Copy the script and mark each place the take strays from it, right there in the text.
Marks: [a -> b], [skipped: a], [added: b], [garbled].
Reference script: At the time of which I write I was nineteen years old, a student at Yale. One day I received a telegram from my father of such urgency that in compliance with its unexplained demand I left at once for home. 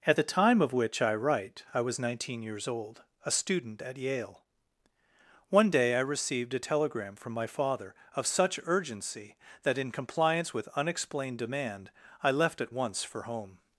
At the time of which I write I was nineteen years old, a student at Yale. One day I received a telegram from my father of such urgency that in compliance with [skipped: its] unexplained demand I left at once for home.